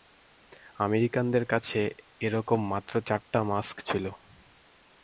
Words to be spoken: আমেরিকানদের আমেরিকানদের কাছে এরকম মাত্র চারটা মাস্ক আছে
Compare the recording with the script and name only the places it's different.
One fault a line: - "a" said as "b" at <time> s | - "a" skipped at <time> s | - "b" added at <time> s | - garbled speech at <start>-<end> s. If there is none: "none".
- "আমেরিকানদের" skipped at 1.4 s
- "আছে" said as "ছিল" at 3.8 s